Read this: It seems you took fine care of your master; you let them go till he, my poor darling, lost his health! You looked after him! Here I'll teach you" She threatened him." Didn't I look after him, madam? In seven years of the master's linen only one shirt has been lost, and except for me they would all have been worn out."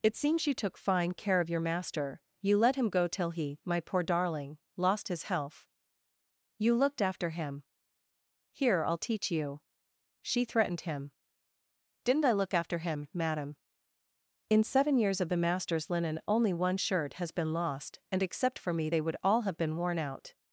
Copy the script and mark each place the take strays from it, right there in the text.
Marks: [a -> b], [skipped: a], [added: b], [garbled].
It seems you took fine care of your master; you let [them -> him] go till he, my poor darling, lost his health! You looked after him! Here I'll teach you" She threatened him." Didn't I look after him, madam? In seven years of the master's linen only one shirt has been lost, and except for me they would all have been worn out."